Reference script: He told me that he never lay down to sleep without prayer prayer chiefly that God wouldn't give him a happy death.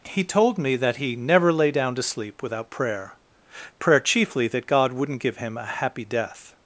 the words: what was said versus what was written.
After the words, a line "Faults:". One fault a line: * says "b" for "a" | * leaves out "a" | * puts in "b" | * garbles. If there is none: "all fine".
He told me that he never lay down to sleep without prayer prayer chiefly that God wouldn't give him a happy death.
Faults:
all fine